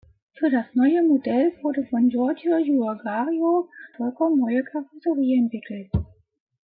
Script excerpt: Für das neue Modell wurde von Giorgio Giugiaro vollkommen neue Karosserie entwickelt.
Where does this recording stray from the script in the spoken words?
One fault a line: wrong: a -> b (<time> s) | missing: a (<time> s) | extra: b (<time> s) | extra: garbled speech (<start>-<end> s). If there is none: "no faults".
no faults